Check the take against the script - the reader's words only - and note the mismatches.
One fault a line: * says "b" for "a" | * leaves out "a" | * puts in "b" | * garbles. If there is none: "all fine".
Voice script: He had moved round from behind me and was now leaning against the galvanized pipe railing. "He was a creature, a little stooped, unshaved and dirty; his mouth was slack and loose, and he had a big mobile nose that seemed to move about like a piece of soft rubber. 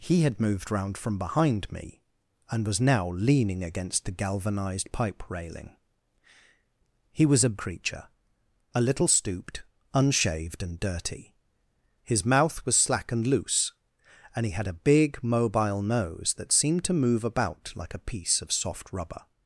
all fine